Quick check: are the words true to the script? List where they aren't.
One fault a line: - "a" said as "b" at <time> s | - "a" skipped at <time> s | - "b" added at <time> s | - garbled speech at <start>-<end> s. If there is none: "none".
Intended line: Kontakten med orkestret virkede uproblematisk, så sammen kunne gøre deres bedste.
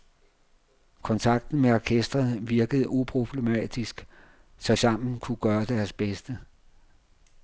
none